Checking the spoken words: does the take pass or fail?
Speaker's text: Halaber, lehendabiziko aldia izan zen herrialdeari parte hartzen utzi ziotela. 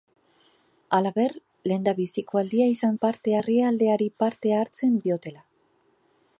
fail